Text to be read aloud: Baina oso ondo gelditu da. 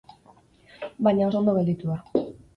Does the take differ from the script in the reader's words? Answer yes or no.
no